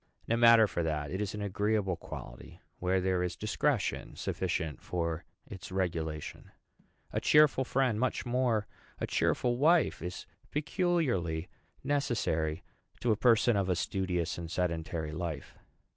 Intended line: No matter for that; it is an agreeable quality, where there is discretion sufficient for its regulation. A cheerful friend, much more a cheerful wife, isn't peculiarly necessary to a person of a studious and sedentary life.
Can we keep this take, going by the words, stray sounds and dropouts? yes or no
no